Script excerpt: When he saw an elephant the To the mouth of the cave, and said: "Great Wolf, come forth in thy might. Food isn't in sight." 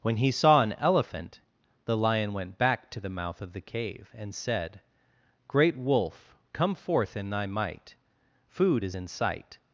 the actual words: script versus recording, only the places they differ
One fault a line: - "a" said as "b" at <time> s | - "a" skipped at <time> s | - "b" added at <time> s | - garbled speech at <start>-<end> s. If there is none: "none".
- "Lion went back" added at 1.9 s
- "isn't" said as "is" at 8.8 s